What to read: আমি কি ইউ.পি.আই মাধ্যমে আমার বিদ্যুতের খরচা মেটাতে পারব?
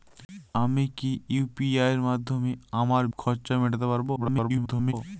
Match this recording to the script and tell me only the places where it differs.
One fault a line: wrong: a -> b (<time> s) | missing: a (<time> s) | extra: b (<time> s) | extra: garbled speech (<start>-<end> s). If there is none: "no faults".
missing: বিদ্যুতের (3.0 s)
extra: garbled speech (4.2-4.9 s)